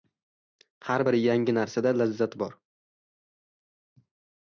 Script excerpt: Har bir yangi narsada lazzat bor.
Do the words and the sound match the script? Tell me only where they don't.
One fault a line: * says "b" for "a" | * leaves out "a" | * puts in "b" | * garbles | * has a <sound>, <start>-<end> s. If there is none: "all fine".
all fine